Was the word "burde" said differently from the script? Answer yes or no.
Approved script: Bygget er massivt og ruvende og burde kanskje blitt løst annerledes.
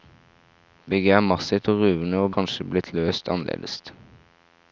yes